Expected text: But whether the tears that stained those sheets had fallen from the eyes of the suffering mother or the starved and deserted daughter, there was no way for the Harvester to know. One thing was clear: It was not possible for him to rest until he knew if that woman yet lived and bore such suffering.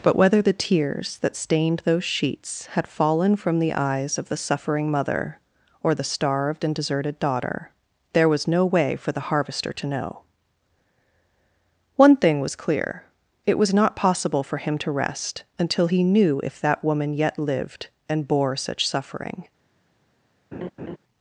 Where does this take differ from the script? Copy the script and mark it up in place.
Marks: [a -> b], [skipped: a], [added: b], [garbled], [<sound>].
But whether the tears that stained those sheets had fallen from the eyes of the suffering mother or the starved and deserted daughter, there was no way for the Harvester to know. One thing was clear: It was not possible for him to rest until he knew if that woman yet lived and bore such suffering. [laugh]